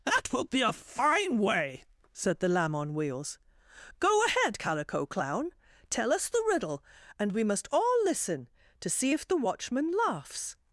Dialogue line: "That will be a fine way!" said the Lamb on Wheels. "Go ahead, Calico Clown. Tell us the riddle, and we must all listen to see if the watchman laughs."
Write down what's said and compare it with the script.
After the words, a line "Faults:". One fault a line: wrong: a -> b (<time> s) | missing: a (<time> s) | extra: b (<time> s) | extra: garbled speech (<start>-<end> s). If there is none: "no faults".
"That will be a fine way!" said the Lamb on Wheels. "Go ahead, Calico Clown. Tell us the riddle, and we must all listen to see if the watchman laughs."
Faults:
no faults